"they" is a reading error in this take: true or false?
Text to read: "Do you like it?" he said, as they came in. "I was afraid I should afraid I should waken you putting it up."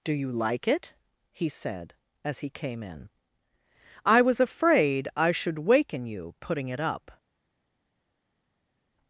true